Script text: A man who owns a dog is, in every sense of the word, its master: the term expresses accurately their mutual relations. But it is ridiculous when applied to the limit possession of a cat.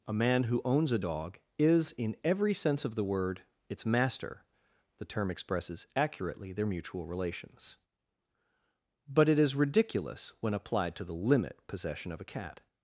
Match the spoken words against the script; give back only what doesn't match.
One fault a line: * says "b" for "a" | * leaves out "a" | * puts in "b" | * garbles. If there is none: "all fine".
all fine